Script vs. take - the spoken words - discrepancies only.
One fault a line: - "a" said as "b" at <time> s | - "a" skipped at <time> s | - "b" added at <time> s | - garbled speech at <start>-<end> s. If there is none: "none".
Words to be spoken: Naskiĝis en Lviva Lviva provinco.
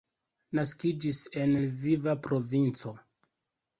- "Lviva" skipped at 2.2 s